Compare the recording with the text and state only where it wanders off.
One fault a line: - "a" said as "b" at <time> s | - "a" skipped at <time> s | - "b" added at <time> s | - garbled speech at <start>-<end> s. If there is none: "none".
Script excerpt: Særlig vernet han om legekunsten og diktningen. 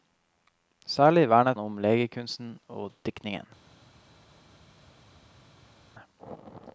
- "han" skipped at 1.6 s